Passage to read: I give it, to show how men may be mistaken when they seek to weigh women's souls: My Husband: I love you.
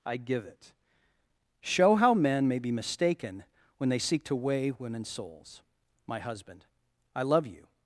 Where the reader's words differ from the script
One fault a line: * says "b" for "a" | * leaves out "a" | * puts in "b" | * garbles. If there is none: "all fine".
* leaves out "to"